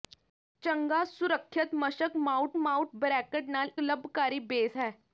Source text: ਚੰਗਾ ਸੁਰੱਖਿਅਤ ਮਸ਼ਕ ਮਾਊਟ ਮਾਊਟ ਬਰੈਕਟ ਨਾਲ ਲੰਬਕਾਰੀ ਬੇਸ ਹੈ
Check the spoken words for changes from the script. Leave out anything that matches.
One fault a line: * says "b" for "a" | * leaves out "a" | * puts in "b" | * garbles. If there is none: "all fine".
all fine